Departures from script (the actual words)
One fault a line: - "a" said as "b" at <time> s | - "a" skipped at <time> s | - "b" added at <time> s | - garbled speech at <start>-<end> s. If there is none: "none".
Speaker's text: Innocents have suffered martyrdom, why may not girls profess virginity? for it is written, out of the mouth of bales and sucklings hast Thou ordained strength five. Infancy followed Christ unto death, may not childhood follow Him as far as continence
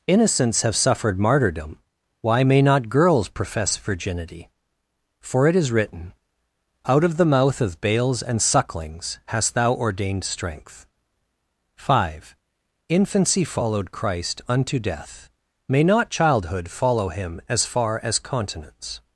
none